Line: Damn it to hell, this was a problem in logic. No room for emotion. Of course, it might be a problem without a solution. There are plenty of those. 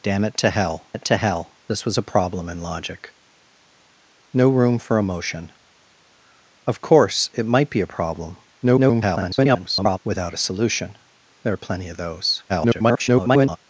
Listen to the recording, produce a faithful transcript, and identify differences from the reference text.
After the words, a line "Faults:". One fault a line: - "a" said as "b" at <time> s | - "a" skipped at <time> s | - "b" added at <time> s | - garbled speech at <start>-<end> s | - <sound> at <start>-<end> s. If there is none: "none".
Damn it to hell it to hell, this was a problem in logic. No room for emotion. Of course, it might be a problem [garbled] without a solution. There are plenty of those. [garbled]
Faults:
- "it to hell" added at 0.9 s
- garbled speech at 8.6-10.0 s
- garbled speech at 12.5-13.6 s